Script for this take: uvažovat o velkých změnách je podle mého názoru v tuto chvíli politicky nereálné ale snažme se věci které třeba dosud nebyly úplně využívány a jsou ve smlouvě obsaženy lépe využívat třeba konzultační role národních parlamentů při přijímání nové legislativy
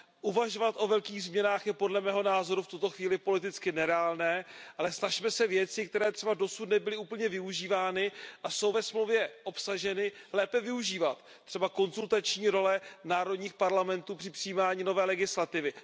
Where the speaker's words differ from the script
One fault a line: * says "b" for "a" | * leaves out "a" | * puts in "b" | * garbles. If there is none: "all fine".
all fine